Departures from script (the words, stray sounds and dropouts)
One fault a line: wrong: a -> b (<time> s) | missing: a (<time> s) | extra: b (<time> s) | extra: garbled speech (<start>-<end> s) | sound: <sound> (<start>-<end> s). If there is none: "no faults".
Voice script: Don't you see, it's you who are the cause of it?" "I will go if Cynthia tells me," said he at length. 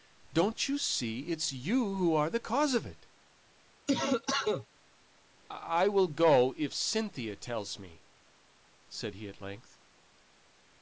sound: cough (3.9-4.7 s)